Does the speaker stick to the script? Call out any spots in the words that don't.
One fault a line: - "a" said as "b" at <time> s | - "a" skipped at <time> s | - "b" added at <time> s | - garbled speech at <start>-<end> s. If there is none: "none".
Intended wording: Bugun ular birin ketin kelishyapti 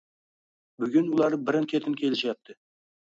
none